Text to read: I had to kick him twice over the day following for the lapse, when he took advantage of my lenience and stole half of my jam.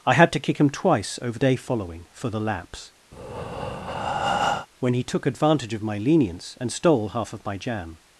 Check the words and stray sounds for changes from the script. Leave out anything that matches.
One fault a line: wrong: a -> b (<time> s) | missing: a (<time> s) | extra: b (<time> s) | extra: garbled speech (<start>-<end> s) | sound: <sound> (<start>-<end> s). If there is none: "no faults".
missing: the (1.4 s)
sound: breath (3.1-4.7 s)